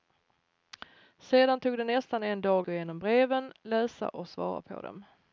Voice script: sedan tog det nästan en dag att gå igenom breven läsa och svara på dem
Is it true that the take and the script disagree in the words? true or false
true